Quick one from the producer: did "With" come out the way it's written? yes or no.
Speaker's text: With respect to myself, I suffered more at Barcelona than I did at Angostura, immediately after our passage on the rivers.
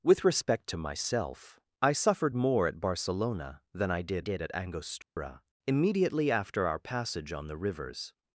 yes